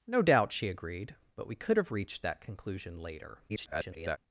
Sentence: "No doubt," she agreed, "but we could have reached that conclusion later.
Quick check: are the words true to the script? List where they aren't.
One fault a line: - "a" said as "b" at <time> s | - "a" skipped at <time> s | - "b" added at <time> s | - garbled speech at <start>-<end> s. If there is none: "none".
- garbled speech at 3.5-4.2 s